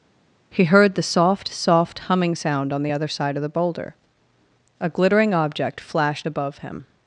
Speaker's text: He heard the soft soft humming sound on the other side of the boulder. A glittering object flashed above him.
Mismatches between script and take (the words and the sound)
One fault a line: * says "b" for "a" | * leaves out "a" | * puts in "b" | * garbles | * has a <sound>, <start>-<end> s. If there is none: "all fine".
all fine